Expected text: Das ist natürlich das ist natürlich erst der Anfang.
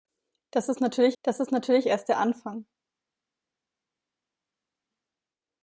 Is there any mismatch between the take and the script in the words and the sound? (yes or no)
no